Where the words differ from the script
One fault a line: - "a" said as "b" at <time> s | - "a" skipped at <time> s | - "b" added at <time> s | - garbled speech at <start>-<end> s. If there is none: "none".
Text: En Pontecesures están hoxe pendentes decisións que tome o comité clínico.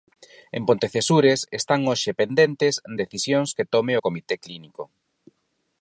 none